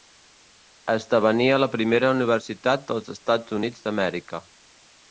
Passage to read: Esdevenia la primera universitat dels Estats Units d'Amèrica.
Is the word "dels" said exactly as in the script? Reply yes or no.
yes